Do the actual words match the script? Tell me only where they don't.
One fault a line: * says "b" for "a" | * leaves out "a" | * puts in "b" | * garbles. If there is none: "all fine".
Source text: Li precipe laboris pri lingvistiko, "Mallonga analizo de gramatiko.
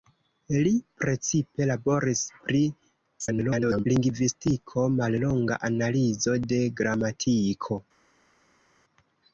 * garbles